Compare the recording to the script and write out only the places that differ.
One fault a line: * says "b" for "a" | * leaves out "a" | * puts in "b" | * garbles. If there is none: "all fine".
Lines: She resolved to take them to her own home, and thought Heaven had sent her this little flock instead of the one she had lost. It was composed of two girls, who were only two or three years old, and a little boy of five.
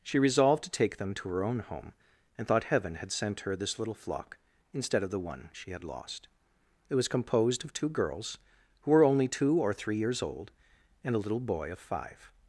all fine